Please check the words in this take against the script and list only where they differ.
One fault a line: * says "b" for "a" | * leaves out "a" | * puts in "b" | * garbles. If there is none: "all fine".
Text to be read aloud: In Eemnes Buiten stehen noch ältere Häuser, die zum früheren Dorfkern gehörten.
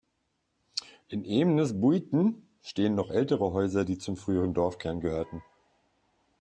all fine